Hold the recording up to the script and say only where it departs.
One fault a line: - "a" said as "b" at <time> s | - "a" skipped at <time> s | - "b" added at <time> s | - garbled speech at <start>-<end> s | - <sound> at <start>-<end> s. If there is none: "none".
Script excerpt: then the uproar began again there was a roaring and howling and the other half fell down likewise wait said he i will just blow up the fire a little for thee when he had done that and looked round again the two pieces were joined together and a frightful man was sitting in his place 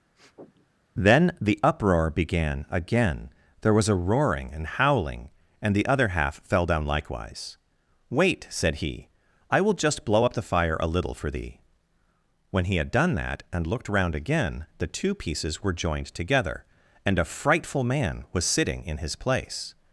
- sniff at 0.1-0.7 s